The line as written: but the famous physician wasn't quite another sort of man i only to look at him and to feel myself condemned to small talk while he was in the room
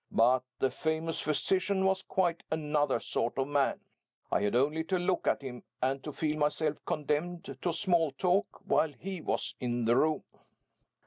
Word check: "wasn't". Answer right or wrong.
wrong